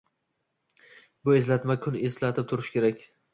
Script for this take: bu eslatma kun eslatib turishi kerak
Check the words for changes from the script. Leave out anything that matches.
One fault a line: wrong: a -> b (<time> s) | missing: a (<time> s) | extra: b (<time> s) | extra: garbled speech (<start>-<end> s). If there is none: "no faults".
no faults